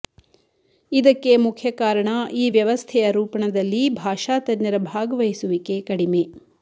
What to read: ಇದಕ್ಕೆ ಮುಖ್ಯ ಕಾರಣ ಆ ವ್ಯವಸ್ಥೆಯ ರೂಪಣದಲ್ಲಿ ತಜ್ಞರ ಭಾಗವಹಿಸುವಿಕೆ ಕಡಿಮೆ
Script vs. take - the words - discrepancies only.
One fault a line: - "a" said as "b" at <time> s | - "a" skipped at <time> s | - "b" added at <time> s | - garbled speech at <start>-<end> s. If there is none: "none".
- "ಆ" said as "ಈ" at 2.4 s
- "ಭಾಷಾ" added at 4.0 s